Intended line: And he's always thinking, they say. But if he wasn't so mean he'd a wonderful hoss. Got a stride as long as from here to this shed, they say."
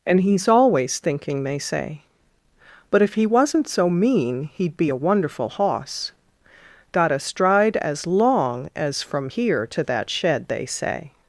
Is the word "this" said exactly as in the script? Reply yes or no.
no